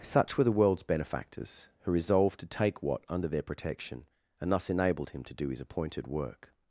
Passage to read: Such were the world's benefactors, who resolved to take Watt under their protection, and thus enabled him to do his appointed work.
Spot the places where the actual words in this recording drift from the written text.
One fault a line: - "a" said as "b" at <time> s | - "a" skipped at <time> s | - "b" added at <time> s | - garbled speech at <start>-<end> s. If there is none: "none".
none